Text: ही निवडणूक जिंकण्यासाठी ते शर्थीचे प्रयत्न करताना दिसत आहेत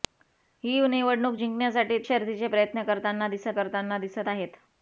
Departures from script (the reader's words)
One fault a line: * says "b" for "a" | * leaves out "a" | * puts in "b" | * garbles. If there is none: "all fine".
* leaves out "ते"
* puts in "करताना दिसत"